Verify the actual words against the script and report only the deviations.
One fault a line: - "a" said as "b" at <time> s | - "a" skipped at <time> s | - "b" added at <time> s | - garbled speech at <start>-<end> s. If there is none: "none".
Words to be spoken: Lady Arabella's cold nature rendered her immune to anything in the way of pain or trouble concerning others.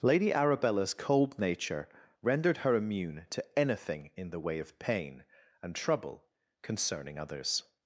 - "or" said as "and" at 5.6 s